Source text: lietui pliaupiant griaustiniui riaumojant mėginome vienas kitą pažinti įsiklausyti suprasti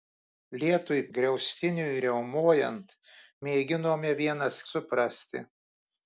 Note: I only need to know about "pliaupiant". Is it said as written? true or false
false